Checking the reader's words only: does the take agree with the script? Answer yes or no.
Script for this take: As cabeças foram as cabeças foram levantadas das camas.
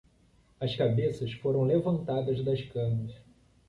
no